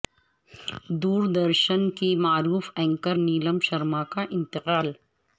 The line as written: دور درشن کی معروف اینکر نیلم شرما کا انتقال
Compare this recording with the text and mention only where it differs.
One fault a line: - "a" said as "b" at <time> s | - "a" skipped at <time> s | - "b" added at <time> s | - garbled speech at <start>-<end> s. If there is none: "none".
none